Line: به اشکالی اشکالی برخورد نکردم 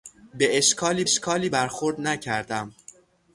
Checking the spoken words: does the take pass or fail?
pass